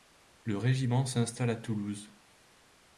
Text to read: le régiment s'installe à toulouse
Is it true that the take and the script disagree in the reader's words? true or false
false